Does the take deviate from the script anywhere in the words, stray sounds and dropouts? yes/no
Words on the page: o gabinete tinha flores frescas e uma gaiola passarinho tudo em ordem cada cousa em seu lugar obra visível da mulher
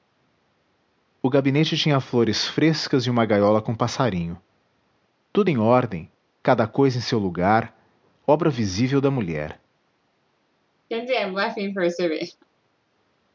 yes